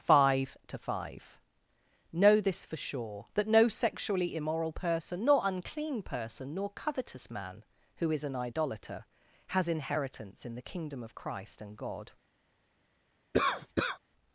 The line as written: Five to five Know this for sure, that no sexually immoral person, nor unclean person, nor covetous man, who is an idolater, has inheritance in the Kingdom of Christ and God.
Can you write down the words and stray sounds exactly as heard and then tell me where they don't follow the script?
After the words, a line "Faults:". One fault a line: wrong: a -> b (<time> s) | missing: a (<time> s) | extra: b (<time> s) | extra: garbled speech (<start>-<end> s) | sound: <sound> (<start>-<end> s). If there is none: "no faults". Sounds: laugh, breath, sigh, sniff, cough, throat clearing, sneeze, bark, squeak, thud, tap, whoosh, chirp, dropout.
Five to five Know this for sure, that no sexually immoral person, nor unclean person, nor covetous man, who is an idolater, has inheritance in the Kingdom of Christ and God.
Faults:
sound: cough (13.3-14.0 s)